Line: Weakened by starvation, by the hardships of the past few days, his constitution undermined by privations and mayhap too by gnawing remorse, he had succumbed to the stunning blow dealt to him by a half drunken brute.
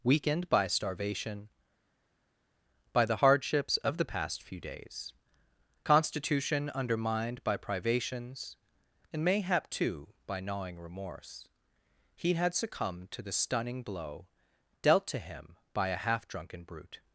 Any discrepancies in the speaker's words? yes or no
yes